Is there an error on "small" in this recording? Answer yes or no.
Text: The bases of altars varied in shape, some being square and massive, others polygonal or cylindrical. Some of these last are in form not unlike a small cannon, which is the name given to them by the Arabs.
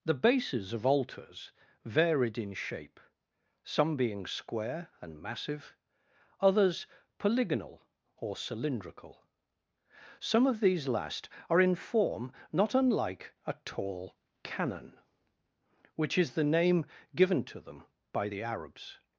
yes